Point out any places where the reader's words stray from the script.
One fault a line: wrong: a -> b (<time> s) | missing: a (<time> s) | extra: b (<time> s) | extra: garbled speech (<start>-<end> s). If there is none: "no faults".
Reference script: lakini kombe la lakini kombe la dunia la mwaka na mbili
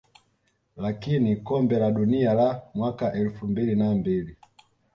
wrong: lakini kombe -> dunia (1.9 s)
wrong: dunia la mwaka -> mwaka elfu mbili (2.7 s)